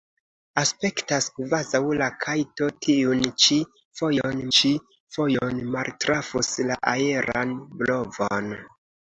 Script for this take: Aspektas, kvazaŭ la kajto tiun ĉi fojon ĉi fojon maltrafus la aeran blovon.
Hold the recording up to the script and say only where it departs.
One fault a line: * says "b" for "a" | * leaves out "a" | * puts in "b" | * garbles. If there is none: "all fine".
all fine